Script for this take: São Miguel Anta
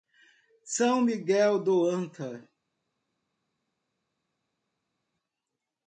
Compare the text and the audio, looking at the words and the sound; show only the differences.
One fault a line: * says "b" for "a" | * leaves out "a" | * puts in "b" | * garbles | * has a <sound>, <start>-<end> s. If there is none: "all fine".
* puts in "do"